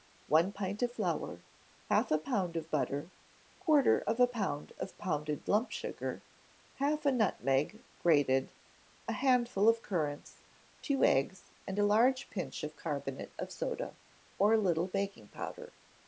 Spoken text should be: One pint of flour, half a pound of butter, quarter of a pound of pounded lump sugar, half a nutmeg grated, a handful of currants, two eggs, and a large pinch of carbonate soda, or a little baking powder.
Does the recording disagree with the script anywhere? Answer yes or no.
yes